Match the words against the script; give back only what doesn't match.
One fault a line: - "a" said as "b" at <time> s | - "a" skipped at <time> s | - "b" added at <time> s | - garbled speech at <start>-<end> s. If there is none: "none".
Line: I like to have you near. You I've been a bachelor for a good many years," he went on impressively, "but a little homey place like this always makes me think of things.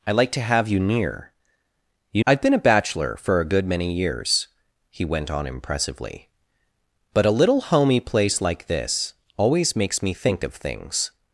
none